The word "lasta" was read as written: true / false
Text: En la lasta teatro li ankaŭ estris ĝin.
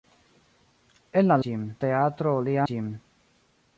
false